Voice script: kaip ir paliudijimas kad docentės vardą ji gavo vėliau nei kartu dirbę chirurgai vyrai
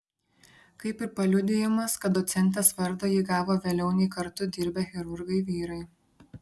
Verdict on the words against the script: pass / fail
pass